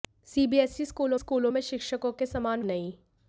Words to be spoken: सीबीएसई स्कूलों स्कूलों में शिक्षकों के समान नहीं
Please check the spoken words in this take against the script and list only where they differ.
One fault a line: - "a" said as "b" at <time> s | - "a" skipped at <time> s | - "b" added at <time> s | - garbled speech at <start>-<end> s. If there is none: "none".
none